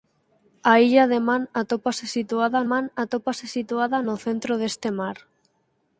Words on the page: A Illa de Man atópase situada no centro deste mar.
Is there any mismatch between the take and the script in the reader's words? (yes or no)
yes